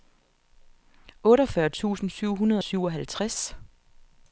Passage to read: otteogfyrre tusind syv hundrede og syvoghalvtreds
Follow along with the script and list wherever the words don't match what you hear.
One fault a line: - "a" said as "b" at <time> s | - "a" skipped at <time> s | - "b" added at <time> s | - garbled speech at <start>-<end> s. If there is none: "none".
none